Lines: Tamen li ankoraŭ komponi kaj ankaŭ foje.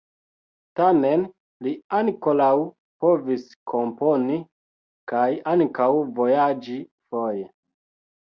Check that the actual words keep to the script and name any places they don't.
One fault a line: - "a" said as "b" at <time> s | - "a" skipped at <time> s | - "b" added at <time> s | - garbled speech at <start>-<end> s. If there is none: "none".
- "povis" added at 3.0 s
- "vojaĝi" added at 6.2 s